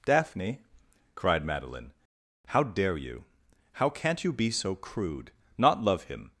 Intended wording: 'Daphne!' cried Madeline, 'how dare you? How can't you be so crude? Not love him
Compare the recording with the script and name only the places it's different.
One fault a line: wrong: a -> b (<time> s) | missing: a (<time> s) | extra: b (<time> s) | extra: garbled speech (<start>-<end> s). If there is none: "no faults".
no faults